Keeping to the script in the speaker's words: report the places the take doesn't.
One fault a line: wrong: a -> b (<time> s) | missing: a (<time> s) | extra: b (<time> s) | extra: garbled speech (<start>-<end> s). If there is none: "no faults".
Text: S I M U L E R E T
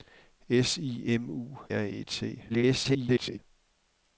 missing: L E (1.6 s)
extra: garbled speech (2.5-3.4 s)